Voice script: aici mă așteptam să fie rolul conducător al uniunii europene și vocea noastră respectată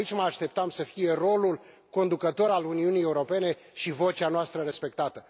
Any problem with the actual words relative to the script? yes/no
no